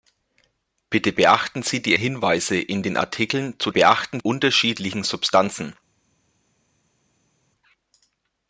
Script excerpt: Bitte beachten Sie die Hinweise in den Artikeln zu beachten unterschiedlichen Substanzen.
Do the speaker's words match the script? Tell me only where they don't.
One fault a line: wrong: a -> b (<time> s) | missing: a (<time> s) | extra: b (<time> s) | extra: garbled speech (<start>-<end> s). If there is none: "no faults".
no faults